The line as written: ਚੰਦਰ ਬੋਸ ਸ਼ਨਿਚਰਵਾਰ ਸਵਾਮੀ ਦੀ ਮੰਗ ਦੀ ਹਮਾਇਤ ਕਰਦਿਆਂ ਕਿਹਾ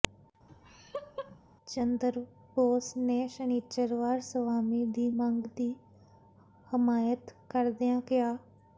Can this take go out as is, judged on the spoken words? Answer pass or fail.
fail